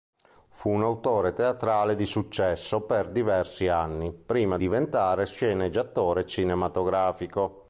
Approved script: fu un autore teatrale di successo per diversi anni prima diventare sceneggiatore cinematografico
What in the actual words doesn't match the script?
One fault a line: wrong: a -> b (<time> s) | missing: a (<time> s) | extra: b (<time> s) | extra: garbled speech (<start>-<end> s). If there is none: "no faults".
no faults